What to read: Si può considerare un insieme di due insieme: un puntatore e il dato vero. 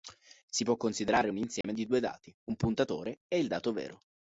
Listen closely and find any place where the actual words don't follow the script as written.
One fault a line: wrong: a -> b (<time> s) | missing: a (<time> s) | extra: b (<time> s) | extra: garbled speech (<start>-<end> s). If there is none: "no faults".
wrong: insieme -> dati (2.0 s)